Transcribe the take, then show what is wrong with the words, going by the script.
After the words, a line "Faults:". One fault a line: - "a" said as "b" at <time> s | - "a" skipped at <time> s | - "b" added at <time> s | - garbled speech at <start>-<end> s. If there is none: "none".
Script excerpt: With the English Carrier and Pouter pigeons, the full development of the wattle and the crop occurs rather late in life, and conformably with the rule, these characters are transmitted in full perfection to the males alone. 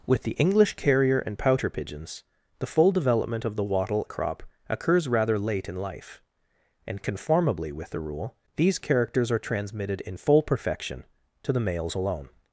With the English Carrier and Pouter pigeons, the full development of the wattle the crop occurs rather late in life, and conformably with the rule, these characters are transmitted in full perfection to the males alone.
Faults:
- "and" skipped at 4.1 s